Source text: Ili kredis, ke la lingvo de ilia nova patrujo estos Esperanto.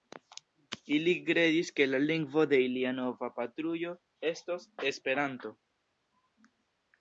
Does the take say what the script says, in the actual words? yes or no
yes